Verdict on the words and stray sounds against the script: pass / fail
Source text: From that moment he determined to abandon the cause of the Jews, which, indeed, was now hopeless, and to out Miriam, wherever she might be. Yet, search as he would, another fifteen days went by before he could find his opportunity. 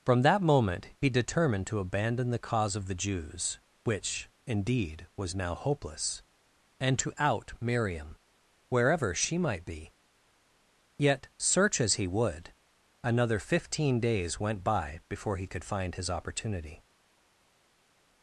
pass